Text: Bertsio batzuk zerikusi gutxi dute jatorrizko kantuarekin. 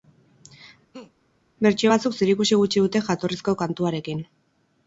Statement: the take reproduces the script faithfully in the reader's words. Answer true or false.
true